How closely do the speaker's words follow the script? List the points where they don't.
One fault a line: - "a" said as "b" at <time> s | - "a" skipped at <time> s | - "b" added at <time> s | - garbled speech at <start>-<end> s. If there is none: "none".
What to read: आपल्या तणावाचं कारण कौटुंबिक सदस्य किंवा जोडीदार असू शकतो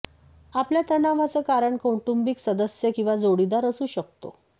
none